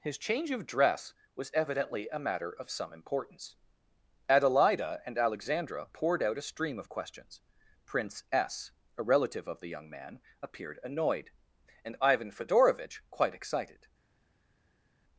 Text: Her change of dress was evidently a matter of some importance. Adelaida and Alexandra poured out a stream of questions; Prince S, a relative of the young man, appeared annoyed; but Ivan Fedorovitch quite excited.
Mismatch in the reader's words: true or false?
true